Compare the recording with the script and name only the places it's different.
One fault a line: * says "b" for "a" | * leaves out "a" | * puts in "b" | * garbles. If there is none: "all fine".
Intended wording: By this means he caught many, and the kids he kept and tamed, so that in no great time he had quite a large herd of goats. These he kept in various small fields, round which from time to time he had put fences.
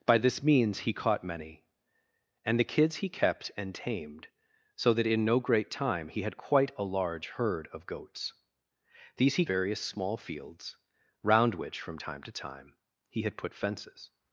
* leaves out "kept in"